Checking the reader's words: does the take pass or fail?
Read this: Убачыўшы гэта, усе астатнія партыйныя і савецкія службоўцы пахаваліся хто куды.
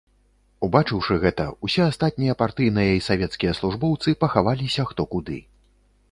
pass